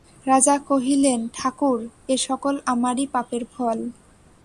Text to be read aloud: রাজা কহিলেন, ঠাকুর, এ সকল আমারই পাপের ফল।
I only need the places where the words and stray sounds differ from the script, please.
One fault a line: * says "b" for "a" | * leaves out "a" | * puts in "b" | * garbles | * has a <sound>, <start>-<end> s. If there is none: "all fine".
all fine